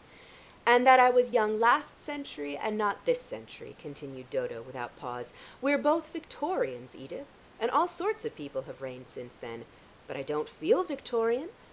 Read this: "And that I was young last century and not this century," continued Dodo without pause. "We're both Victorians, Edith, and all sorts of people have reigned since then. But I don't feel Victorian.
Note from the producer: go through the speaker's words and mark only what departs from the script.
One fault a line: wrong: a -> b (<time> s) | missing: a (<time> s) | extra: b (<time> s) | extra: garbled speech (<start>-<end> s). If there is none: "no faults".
no faults